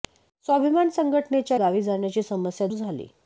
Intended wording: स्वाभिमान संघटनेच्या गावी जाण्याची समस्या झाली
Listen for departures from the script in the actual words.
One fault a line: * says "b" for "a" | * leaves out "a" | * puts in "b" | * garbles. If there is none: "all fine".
all fine